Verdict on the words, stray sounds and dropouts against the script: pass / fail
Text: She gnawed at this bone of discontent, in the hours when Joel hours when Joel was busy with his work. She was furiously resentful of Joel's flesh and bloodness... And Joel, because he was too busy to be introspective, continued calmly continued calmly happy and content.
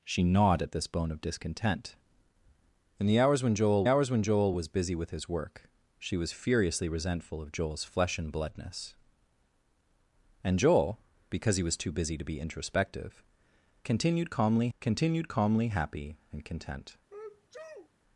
fail